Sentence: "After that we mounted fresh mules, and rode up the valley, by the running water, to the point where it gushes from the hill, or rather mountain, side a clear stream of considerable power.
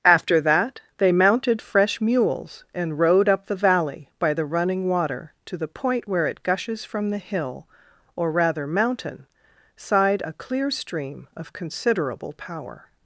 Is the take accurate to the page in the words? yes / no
no